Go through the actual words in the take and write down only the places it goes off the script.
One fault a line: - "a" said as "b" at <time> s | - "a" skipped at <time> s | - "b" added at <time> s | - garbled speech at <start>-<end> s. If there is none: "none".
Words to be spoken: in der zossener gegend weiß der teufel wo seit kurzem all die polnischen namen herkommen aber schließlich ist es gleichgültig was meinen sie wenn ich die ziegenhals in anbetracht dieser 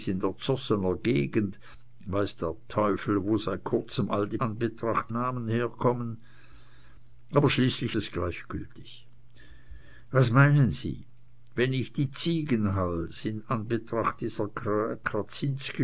- "polnischen" said as "anbetracht" at 4.4 s
- "ist" skipped at 8.0 s